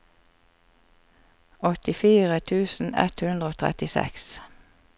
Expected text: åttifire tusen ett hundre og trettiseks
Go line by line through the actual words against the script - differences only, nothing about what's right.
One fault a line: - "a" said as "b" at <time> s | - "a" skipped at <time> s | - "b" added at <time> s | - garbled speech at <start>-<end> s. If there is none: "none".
none